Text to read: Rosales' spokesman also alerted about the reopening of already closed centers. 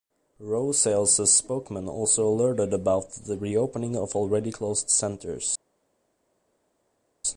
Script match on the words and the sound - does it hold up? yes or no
yes